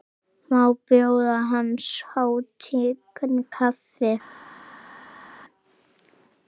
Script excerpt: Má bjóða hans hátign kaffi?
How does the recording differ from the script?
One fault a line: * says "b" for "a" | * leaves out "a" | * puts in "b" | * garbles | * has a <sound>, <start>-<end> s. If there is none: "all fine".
all fine